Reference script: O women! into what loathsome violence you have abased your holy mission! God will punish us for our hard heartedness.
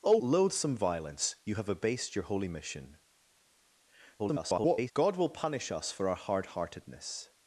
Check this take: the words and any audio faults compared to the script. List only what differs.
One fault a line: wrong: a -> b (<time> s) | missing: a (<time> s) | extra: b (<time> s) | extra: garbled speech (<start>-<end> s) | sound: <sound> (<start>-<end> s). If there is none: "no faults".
missing: women into what (0.2 s)
extra: garbled speech (4.2-4.9 s)